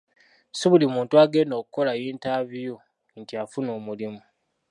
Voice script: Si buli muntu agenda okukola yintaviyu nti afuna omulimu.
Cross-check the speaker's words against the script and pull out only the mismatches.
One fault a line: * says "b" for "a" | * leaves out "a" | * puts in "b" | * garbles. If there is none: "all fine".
all fine